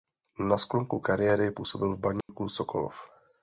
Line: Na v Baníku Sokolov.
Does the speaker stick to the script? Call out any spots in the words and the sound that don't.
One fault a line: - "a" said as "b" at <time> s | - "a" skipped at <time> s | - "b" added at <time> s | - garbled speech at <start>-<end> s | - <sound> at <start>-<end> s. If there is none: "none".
- "sklonku kariéry působil" added at 0.6 s
- dropout at 2.2-2.3 s